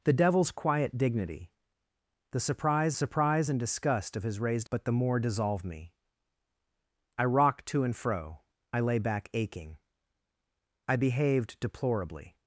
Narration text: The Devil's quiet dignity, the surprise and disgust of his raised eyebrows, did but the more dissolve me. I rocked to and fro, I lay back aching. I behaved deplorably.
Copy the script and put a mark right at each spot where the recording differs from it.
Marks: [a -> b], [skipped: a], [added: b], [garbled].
The Devil's quiet dignity, the surprise [added: surprise] and disgust of his raised [skipped: eyebrows, did] but the more dissolve me. I rocked to and fro, I lay back aching. I behaved deplorably.